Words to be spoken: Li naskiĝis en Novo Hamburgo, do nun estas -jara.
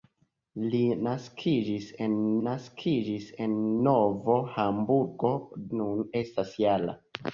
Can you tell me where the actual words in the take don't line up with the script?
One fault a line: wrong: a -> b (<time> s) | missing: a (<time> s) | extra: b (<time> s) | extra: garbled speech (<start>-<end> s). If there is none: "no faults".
extra: naskiĝis en (2.5 s)
missing: do (5.3 s)